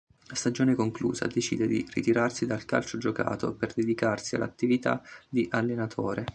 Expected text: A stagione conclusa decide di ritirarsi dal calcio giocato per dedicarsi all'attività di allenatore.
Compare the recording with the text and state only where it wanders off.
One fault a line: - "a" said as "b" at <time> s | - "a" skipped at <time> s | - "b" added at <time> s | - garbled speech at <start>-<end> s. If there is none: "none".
none